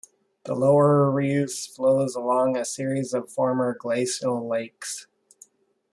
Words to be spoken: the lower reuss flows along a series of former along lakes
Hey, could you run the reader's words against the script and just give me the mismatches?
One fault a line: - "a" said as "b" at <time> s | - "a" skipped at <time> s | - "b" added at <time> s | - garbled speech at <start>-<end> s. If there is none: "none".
- "along" said as "glacial" at 3.8 s